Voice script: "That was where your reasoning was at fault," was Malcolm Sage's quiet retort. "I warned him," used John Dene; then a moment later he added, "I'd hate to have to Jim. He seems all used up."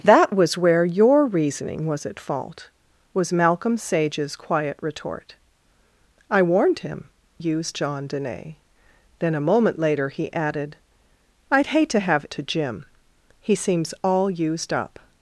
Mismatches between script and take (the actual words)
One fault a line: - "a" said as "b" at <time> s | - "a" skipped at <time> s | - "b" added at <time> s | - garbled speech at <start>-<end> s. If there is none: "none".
none